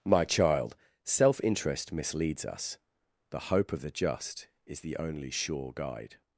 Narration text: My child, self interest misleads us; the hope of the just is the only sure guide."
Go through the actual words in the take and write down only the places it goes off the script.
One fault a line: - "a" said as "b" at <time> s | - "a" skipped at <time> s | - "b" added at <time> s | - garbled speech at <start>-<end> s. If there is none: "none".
none